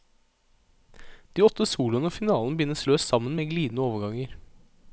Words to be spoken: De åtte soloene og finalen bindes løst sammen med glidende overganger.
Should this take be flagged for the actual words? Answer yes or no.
no